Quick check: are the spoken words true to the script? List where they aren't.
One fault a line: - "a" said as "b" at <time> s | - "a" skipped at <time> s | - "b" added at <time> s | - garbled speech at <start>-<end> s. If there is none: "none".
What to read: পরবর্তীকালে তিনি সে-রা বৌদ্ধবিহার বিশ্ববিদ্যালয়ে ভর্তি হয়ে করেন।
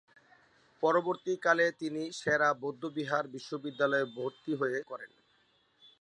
none